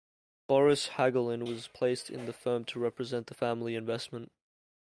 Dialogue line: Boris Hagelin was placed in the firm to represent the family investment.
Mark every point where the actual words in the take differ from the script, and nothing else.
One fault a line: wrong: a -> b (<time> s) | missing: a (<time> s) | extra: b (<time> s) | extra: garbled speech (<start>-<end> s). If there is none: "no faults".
no faults